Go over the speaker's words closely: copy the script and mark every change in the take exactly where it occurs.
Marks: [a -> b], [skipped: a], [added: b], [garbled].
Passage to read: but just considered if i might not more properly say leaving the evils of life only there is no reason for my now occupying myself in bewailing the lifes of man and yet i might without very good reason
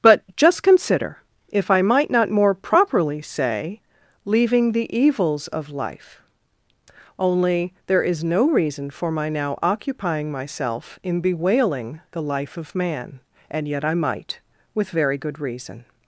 but just [considered -> consider] if i might not more properly say leaving the evils of life only there is no reason for my now occupying myself in bewailing the [lifes -> life] of man and yet i might [without -> with] very good reason